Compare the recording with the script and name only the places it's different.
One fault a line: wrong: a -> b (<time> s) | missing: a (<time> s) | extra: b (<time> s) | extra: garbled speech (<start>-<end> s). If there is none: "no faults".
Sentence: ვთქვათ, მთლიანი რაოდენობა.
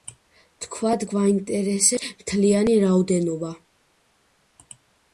extra: გვაინტერესებს (1.1 s)